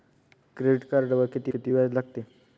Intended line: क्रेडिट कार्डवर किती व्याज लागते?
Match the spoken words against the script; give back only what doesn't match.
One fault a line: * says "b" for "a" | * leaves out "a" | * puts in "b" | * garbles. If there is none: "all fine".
* puts in "किती"